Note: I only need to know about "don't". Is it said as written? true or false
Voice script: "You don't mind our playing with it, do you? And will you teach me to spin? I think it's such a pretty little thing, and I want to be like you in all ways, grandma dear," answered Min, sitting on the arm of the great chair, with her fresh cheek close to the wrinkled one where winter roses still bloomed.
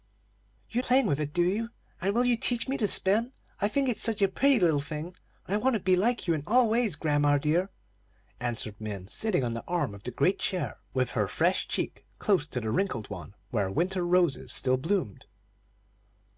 false